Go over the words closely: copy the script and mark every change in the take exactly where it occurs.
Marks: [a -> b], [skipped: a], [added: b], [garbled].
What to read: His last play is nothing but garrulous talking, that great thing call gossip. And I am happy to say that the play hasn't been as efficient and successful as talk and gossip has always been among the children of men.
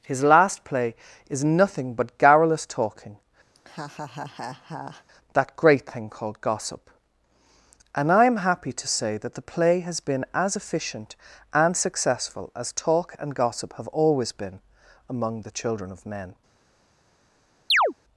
His last play is nothing but garrulous talking, that great thing [call -> called] gossip. And I am happy to say that the play [hasn't -> has] been as efficient and successful as talk and gossip [has -> have] always been among the children of men.